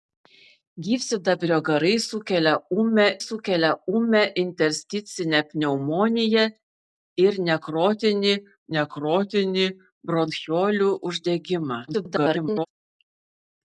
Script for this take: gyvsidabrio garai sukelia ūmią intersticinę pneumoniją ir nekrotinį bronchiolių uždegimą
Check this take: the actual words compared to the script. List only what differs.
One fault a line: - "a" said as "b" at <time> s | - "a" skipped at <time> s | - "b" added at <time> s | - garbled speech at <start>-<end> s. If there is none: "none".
- "sukelia ūmią" added at 3.2 s
- "nekrotinį" added at 8.8 s
- garbled speech at 11.9-12.7 s